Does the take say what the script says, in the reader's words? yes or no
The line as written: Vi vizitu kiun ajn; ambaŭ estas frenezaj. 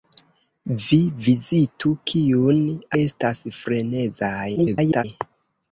no